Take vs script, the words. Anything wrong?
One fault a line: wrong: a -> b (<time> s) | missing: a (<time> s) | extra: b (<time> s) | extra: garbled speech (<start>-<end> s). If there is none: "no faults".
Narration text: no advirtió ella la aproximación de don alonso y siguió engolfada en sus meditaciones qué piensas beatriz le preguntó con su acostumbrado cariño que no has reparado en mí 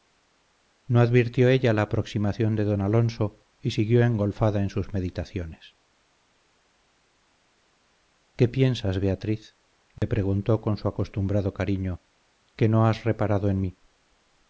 no faults